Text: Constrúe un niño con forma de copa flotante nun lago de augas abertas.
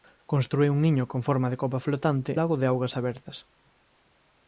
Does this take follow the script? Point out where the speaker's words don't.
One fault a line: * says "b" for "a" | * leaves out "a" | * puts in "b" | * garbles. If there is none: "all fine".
* leaves out "nun"